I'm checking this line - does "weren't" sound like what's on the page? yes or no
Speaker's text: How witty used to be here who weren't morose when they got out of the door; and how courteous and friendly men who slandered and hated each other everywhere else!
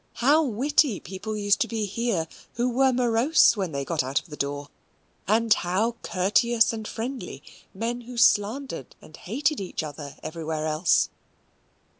no